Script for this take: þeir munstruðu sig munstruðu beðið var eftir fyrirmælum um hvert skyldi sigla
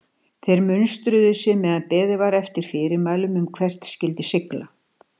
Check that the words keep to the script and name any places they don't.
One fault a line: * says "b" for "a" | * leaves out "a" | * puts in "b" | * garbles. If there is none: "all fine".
* says "meðan" for "munstruðu"